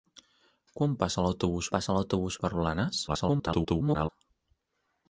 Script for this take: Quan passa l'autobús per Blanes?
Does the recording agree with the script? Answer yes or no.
no